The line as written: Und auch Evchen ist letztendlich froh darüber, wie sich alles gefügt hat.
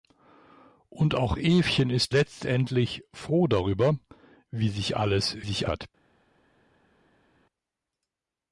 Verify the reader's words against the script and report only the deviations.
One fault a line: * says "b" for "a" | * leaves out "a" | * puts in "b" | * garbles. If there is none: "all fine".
* says "sich" for "gefügt"